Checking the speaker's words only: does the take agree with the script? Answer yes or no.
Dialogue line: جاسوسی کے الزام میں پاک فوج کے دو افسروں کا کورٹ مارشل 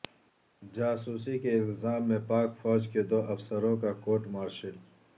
yes